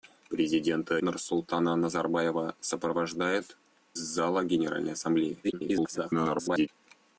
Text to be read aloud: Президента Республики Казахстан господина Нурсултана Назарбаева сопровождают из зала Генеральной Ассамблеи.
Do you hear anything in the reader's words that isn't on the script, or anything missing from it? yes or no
yes